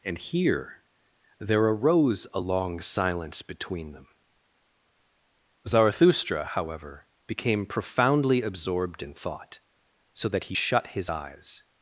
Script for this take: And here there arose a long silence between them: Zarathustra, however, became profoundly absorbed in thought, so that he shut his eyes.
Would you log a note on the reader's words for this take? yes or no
no